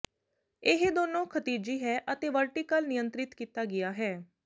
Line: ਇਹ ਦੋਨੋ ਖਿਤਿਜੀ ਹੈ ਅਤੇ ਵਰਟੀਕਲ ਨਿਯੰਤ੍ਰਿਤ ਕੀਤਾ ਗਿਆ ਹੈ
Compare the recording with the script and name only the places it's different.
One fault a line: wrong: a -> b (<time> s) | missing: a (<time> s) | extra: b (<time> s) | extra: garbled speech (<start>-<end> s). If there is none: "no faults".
no faults